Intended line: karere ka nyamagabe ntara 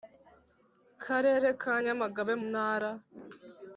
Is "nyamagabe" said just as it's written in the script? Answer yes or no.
yes